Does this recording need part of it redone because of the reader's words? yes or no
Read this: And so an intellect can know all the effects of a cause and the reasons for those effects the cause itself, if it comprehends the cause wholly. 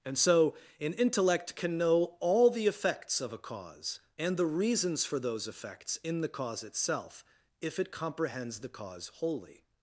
yes